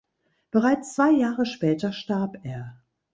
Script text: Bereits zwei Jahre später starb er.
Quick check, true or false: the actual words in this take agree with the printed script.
true